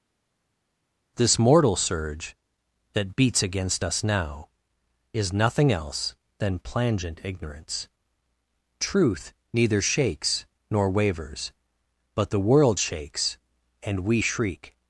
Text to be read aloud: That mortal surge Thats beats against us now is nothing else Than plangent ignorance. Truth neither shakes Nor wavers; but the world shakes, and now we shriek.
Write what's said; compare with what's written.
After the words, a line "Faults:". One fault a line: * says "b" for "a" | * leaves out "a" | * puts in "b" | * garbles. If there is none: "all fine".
This mortal surge That beats against us now is nothing else Than plangent ignorance. Truth neither shakes Nor wavers; but the world shakes, and we shriek.
Faults:
* says "This" for "That"
* says "That" for "Thats"
* leaves out "now"